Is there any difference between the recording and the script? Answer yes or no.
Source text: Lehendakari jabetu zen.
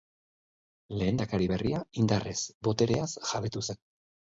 yes